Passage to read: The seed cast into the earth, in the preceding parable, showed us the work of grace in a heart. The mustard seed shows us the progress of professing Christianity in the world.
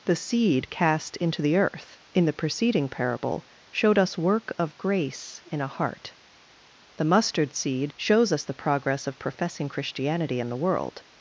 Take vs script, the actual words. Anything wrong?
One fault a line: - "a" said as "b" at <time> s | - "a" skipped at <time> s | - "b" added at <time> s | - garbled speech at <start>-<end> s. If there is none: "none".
- "the" skipped at 4.2 s